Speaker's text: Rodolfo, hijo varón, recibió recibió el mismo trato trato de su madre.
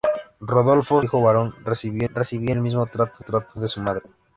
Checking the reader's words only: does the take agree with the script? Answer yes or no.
yes